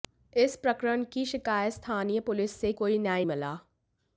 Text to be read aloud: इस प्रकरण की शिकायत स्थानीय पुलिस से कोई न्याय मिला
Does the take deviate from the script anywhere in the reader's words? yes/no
no